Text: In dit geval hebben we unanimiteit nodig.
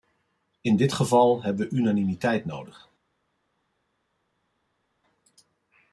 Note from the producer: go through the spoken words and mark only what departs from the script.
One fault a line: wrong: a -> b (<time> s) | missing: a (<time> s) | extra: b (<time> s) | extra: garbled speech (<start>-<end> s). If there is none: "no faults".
no faults